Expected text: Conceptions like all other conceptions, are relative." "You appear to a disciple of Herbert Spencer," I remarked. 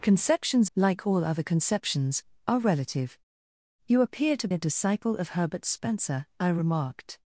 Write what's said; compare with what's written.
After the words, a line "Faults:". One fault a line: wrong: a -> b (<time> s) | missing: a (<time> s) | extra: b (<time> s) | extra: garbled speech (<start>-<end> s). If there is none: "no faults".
Conceptions like all other conceptions, are relative." "You appear to a disciple of Herbert Spencer," I remarked.
Faults:
no faults